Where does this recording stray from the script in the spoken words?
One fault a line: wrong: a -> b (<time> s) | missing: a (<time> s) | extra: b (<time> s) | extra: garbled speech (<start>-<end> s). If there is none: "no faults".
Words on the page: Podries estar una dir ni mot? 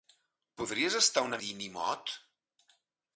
no faults